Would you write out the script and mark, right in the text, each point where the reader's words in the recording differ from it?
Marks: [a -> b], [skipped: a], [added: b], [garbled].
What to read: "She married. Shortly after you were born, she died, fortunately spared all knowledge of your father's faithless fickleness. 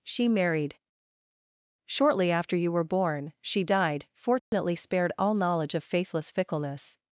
"She married. Shortly after you were born, she died, fortunately spared all knowledge of [skipped: your father's] faithless fickleness.